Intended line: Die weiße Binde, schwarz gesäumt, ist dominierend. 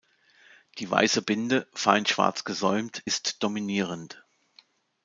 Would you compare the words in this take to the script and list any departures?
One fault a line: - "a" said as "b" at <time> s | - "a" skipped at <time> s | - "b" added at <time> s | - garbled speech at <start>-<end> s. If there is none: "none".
- "fein" added at 1.7 s